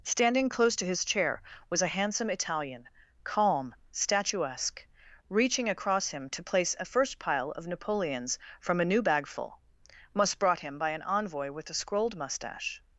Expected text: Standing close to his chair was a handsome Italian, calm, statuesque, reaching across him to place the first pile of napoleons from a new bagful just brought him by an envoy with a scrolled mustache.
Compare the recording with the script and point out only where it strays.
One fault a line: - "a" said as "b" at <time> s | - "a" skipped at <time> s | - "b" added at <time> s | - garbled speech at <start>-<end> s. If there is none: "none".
- "the" said as "a" at 6.8 s
- "just" said as "must" at 10.1 s